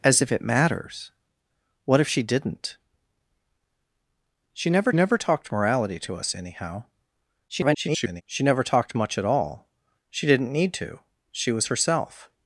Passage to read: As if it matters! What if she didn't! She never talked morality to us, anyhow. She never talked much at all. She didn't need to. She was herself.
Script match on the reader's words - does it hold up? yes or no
no